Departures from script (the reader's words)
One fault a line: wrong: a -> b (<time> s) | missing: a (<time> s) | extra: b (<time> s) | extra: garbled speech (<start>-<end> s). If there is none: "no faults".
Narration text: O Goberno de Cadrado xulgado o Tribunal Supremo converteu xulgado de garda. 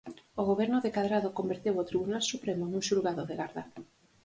wrong: xulgado -> converteu (1.4 s)
wrong: converteu -> nun (2.7 s)